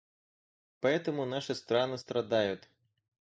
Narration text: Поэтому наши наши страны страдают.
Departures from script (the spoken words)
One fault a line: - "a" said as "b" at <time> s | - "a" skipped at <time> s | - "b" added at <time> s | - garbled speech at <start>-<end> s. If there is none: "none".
- "наши" skipped at 1.5 s